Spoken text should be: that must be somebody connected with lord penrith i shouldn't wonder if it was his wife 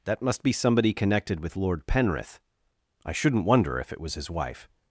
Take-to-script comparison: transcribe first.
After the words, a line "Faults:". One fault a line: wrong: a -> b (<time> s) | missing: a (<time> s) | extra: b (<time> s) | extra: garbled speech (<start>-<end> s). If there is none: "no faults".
that must be somebody connected with lord penrith i shouldn't wonder if it was his wife
Faults:
no faults